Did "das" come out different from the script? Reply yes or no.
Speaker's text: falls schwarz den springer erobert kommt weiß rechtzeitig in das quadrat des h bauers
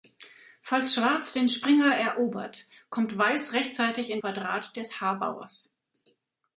yes